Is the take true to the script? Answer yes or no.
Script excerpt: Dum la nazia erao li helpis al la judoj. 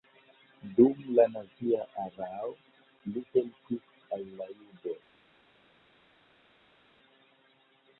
yes